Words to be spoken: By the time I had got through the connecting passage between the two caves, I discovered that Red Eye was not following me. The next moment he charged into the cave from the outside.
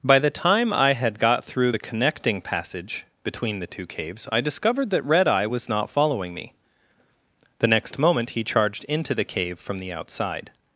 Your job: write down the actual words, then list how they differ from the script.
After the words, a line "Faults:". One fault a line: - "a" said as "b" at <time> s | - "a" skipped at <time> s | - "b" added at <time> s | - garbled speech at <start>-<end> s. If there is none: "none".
By the time I had got through the connecting passage between the two caves, I discovered that Red Eye was not following me. The next moment he charged into the cave from the outside.
Faults:
none